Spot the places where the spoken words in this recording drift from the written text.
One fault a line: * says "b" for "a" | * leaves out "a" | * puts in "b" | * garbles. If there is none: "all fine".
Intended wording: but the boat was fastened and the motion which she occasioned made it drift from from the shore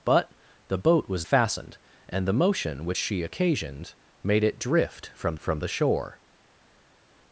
all fine